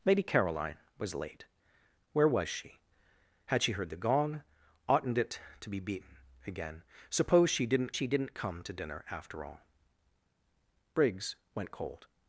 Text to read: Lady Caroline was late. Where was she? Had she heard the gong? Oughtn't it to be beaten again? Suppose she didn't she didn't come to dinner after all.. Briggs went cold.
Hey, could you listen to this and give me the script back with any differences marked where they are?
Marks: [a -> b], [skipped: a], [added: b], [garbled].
Lady Caroline was late. Where was she? Had she heard the gong? Oughtn't it to be beaten again? Suppose she didn't she didn't come to dinner after all.. Briggs went cold.